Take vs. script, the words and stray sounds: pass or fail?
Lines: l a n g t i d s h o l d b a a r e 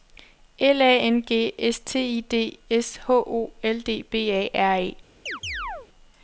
fail